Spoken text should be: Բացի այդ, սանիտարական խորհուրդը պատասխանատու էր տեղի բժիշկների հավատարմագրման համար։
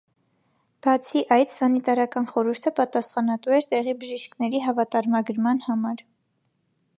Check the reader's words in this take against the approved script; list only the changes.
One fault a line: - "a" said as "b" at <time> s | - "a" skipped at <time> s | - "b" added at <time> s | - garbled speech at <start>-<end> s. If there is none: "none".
none